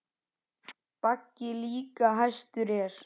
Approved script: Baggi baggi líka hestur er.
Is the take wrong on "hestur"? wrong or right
right